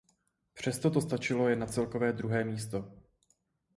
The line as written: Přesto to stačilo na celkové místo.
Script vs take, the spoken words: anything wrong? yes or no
yes